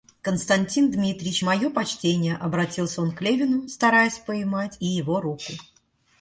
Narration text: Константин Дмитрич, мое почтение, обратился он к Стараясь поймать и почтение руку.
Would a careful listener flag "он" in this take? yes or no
no